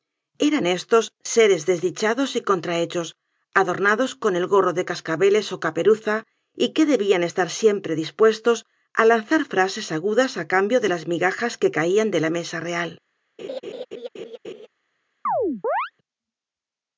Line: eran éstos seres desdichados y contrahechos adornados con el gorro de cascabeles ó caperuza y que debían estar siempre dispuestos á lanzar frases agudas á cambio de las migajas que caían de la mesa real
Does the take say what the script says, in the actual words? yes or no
yes